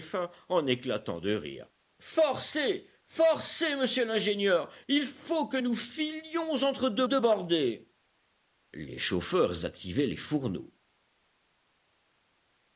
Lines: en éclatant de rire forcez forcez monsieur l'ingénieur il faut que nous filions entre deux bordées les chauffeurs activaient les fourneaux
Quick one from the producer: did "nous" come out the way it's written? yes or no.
yes